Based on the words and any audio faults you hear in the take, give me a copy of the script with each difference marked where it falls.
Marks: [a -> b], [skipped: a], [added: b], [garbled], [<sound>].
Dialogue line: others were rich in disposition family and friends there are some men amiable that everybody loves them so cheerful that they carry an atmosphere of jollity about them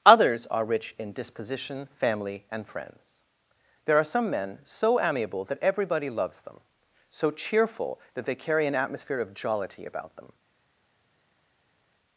others [were -> are] rich in disposition family and friends there are some men [added: so] amiable that everybody loves them so cheerful that they carry an atmosphere of jollity about them